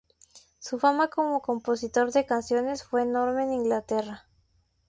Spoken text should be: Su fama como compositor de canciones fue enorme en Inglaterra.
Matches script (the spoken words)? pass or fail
pass